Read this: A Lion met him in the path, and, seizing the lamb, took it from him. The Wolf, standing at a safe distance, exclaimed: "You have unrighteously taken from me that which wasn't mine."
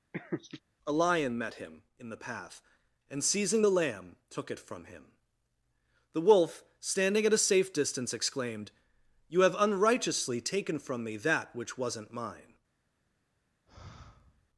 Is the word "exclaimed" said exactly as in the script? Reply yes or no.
yes